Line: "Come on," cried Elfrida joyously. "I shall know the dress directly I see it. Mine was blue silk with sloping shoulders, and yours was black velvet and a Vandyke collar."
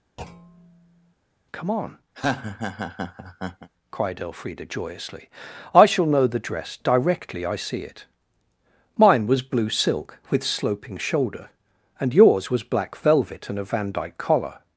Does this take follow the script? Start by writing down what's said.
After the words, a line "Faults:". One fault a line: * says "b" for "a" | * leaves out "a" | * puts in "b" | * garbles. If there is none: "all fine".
"Come on," cried Elfrida joyously. "I shall know the dress directly I see it. Mine was blue silk with sloping shoulder, and yours was black velvet and a Vandyke collar."
Faults:
* says "shoulder" for "shoulders"